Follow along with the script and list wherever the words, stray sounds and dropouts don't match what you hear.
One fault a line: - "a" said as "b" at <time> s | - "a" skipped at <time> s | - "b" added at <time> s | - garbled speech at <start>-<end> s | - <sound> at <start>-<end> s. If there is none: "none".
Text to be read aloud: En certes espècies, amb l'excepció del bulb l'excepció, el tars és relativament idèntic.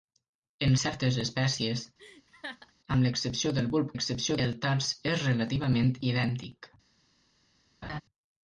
- laugh at 2.0-2.7 s
- laugh at 7.8-8.0 s